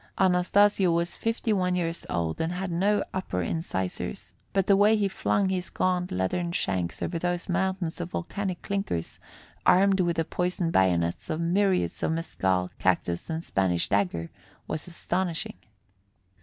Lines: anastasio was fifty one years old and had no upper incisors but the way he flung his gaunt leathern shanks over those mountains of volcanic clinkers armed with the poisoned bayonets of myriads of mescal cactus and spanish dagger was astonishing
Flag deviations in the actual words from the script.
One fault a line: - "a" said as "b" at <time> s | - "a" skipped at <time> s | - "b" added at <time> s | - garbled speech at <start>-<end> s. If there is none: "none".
none